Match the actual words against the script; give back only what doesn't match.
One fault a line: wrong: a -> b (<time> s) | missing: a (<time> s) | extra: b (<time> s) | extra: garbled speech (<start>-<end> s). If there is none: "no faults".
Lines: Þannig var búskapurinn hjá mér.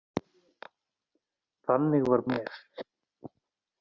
missing: búskapurinn hjá (2.2 s)